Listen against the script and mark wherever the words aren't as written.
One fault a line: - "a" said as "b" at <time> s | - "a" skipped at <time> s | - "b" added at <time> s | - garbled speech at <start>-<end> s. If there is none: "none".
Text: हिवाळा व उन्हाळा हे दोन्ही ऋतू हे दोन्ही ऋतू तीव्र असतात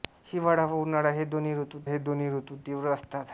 none